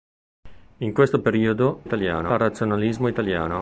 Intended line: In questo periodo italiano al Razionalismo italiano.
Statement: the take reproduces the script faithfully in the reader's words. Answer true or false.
true